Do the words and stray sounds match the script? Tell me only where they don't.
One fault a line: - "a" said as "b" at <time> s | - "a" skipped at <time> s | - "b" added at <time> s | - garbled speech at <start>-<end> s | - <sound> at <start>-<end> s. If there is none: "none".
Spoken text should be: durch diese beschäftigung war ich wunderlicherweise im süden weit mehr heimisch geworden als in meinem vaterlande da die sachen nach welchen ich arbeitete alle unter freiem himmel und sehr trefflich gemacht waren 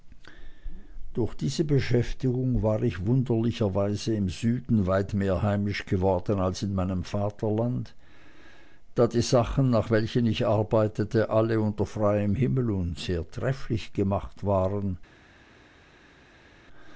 none